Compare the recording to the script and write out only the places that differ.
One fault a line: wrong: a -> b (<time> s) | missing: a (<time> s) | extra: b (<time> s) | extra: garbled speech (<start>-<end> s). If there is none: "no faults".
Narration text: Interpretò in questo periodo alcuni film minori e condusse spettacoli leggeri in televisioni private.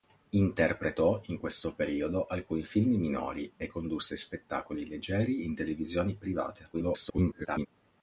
extra: garbled speech (6.7-7.7 s)